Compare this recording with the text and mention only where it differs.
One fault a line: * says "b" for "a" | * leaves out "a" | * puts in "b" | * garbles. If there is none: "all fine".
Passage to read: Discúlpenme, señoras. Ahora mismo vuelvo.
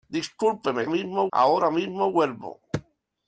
* says "mismo" for "señoras"